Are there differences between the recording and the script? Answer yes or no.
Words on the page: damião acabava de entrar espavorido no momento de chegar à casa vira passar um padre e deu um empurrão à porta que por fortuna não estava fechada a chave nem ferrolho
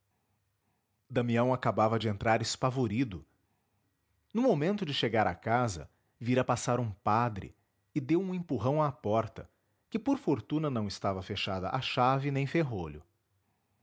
no